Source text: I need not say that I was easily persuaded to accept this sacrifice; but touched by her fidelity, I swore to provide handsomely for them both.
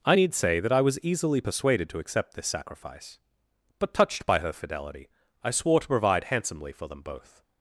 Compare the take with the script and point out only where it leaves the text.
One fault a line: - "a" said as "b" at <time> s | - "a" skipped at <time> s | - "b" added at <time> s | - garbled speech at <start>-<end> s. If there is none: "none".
- "not" skipped at 0.3 s